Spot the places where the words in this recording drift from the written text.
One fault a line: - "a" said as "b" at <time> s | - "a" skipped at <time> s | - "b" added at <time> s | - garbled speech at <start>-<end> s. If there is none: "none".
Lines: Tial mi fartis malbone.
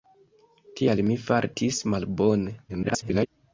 - garbled speech at 2.7-3.3 s